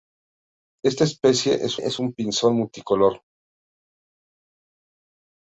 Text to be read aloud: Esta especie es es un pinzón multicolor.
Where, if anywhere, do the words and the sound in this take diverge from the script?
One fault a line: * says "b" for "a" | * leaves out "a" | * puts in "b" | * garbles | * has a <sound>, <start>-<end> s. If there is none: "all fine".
all fine